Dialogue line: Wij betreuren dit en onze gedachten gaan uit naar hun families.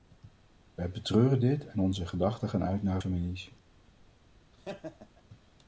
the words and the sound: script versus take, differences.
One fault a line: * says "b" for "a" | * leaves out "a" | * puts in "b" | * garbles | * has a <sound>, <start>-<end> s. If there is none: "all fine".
* leaves out "hun"
* has a laugh, 4.5-5.2 s